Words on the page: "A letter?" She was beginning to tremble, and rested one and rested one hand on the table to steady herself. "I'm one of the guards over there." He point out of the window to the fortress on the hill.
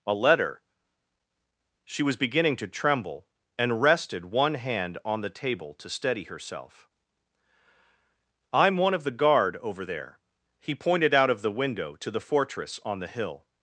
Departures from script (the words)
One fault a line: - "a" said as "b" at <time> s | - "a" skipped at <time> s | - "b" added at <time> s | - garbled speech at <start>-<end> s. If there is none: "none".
- "and rested one" skipped at 4.5 s
- "guards" said as "guard" at 9.1 s
- "point" said as "pointed" at 10.8 s